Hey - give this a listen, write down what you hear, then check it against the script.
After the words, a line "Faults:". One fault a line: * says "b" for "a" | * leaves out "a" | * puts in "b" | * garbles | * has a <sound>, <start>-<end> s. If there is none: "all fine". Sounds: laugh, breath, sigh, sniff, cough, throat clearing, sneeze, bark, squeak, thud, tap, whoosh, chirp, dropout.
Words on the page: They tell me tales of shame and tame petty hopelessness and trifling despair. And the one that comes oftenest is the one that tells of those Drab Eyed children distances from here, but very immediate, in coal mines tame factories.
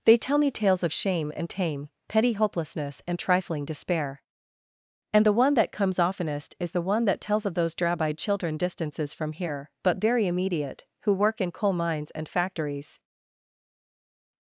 They tell me tales of shame and tame petty hopelessness and trifling despair. And the one that comes oftenest is the one that tells of those Drab Eyed children distances from here, but very immediate, who work in coal mines and factories.
Faults:
* puts in "who work"
* says "and" for "tame"